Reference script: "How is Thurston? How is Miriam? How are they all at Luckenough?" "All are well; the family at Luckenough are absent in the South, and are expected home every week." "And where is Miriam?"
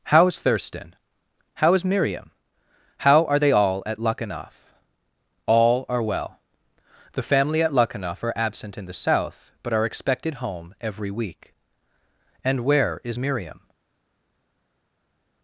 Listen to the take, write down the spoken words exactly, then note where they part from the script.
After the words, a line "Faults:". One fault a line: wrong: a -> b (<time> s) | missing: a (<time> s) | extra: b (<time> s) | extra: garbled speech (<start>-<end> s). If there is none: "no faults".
"How is Thurston? How is Miriam? How are they all at Luckenough?" "All are well; the family at Luckenough are absent in the South, but are expected home every week." "And where is Miriam?"
Faults:
wrong: and -> but (9.6 s)